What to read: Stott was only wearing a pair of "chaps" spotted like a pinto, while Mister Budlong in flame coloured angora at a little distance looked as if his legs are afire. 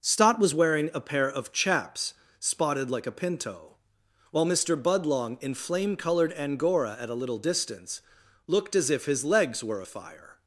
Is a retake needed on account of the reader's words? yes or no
yes